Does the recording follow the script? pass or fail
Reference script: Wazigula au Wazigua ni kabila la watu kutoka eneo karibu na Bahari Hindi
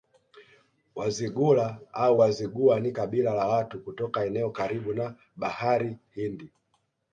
pass